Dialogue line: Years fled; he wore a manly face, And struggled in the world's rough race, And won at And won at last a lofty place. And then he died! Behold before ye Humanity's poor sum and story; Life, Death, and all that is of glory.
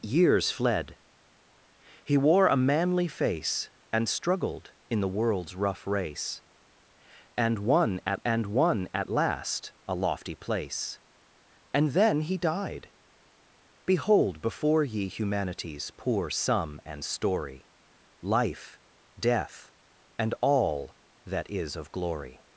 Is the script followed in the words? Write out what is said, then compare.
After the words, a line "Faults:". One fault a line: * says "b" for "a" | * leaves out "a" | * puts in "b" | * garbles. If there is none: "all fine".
Years fled; he wore a manly face, And struggled in the world's rough race, And won at And won at last a lofty place. And then he died! Behold before ye Humanity's poor sum and story; Life, Death, and all that is of glory.
Faults:
all fine